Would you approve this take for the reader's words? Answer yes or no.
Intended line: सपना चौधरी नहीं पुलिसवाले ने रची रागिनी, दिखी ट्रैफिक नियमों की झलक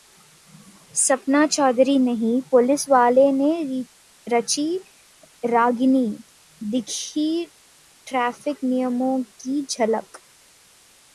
yes